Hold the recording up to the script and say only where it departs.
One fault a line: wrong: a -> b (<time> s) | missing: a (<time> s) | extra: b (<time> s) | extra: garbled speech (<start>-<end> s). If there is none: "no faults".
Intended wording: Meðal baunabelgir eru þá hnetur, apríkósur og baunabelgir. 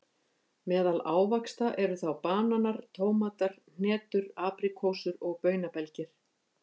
wrong: baunabelgir -> ávaxta (1.1 s)
extra: bananar tómatar (2.2 s)